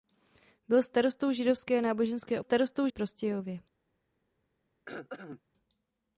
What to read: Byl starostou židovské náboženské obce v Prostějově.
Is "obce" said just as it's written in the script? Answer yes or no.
no